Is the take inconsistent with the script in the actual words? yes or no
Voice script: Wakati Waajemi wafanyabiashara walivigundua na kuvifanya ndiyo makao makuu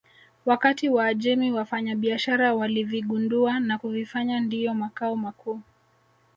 no